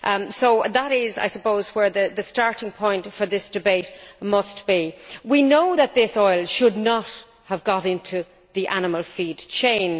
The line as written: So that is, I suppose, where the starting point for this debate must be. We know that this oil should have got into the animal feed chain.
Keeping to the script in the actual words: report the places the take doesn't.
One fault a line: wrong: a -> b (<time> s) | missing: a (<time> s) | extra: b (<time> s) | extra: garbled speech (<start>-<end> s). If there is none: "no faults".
extra: not (6.8 s)